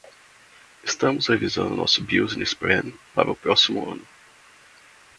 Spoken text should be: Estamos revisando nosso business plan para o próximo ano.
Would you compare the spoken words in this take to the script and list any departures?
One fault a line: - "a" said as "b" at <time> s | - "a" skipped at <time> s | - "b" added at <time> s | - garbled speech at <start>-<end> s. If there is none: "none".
none